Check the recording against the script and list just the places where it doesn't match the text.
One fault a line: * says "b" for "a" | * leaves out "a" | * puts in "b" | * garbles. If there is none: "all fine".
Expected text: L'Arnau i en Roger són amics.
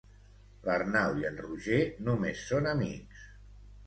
* puts in "només"